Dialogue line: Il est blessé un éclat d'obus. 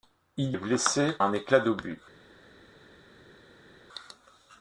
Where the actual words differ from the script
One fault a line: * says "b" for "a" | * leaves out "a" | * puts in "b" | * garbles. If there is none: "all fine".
all fine